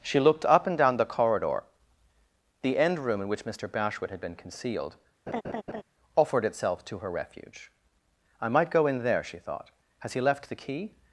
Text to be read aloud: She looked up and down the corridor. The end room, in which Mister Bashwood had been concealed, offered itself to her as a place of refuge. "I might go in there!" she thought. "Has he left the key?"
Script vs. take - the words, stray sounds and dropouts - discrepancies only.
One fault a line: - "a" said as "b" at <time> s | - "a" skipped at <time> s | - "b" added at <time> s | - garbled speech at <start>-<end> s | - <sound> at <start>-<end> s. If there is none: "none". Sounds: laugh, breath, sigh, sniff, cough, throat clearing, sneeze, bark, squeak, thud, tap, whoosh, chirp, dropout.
- laugh at 5.3-5.8 s
- "as a place of" skipped at 7.1 s